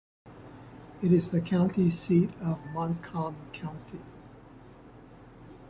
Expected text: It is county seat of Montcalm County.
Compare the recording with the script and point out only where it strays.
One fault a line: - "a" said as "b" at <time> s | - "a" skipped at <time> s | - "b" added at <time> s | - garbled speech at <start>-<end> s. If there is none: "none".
- "the" added at 1.3 s